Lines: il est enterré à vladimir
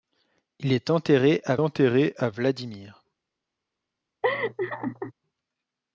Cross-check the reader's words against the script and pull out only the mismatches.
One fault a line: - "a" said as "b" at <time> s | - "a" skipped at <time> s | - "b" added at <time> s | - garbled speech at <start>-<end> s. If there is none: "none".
- "enterré à" added at 1.6 s